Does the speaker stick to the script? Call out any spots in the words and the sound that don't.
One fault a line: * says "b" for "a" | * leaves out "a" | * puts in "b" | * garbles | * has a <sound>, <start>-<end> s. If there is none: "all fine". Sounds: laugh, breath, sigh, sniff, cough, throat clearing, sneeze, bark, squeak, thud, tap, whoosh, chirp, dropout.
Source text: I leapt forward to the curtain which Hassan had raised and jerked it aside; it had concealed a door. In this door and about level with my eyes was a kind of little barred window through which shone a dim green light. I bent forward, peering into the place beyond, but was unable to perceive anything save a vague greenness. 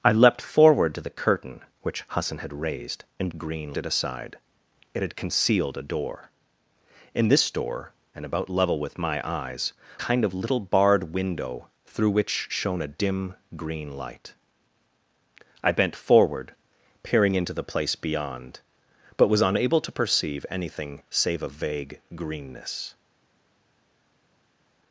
* says "green" for "jerked"
* leaves out "was a"